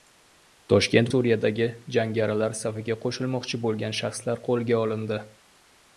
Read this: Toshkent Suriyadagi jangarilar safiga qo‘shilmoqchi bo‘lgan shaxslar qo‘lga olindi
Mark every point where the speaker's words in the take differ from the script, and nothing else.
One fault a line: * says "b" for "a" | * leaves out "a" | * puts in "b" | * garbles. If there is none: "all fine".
all fine